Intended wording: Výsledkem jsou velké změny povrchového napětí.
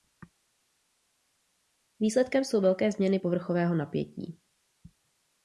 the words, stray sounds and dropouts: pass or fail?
pass